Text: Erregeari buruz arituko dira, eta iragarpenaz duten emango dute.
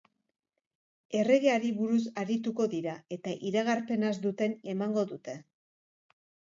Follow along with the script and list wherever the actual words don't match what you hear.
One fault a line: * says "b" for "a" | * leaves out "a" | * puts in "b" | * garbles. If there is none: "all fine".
all fine